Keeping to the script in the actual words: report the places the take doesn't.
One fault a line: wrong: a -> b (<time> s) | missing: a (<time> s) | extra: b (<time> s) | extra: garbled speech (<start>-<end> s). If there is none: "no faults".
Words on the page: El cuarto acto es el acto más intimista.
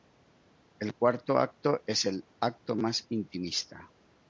no faults